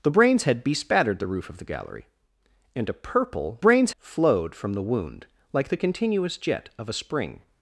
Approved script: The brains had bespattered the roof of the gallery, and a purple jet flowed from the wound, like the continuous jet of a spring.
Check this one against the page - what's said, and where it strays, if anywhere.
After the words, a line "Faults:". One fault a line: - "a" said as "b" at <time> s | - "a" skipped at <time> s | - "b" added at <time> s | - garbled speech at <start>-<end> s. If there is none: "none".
The brains had bespattered the roof of the gallery, and a purple brains flowed from the wound, like the continuous jet of a spring.
Faults:
- "jet" said as "brains" at 3.6 s